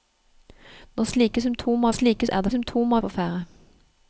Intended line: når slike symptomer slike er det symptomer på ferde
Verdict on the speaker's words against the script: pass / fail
pass